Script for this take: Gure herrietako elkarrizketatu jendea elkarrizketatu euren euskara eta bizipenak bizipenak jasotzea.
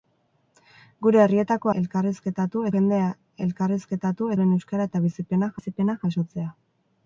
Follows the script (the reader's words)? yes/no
yes